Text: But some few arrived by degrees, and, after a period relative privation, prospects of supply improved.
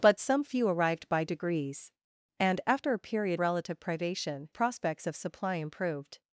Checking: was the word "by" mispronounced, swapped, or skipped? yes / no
no